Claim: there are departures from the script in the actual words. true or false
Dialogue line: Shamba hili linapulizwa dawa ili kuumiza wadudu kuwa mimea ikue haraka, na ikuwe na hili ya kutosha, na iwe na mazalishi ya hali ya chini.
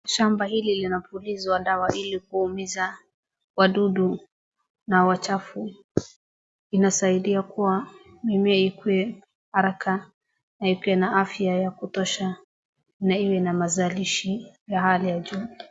true